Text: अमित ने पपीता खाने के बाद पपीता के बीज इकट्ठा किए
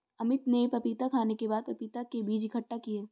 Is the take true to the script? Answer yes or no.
yes